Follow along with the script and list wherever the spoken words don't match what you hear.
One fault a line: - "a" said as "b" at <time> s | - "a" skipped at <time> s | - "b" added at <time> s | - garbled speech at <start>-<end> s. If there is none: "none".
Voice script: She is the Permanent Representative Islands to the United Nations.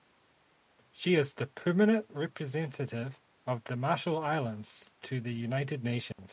- "of the Marshall" added at 3.5 s